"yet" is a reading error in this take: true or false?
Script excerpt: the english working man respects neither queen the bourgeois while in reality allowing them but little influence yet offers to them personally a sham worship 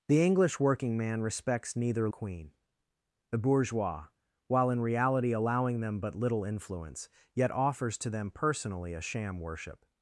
false